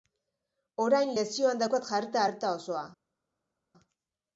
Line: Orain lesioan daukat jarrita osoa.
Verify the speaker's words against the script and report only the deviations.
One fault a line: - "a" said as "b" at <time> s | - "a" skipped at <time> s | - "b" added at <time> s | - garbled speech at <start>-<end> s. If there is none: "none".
- "arreta" added at 2.3 s